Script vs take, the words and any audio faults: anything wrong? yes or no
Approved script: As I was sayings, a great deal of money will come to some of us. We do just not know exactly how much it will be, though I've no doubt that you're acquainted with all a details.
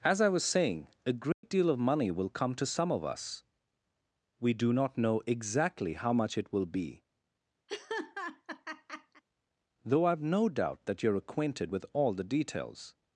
yes